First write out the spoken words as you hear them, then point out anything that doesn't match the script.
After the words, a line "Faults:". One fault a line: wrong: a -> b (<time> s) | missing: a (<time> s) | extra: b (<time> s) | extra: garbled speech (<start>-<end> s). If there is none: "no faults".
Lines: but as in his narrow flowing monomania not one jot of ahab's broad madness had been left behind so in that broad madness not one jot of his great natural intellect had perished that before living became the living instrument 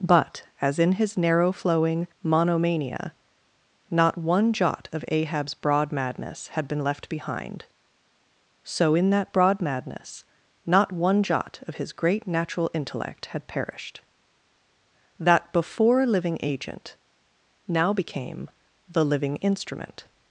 but as in his narrow flowing monomania not one jot of ahab's broad madness had been left behind so in that broad madness not one jot of his great natural intellect had perished that before living agent now became the living instrument
Faults:
extra: agent now (16.4 s)